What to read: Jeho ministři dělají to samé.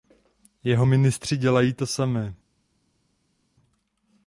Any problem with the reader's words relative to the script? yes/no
no